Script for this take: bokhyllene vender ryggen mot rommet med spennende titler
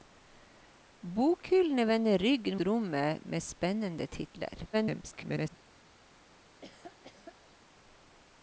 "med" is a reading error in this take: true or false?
false